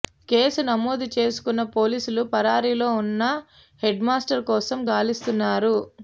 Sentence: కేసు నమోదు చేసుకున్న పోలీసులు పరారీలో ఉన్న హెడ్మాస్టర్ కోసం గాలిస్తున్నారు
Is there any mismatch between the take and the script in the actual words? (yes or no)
no